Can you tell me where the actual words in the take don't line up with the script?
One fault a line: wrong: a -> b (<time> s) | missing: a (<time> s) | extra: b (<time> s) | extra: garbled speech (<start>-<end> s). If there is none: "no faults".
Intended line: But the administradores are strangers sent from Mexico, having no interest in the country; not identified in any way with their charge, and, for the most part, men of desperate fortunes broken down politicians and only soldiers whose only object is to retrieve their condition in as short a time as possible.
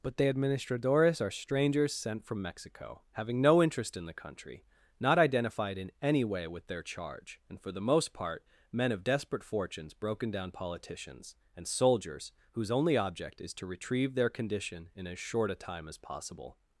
missing: only (11.7 s)